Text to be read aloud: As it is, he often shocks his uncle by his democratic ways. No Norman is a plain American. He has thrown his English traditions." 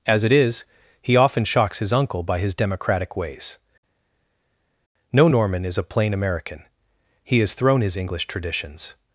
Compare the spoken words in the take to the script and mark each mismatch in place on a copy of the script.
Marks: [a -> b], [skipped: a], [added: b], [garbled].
As it is, he often shocks his uncle by his democratic ways. No Norman is a plain American. He has thrown his English traditions."